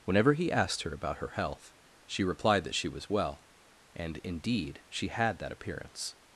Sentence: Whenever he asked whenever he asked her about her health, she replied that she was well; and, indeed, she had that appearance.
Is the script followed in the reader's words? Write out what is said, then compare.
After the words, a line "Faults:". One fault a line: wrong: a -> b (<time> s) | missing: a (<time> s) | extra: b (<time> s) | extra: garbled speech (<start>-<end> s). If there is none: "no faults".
Whenever he asked her about her health, she replied that she was well; and, indeed, she had that appearance.
Faults:
missing: whenever he asked (0.8 s)